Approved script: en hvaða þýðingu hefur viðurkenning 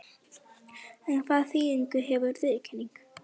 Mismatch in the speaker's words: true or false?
false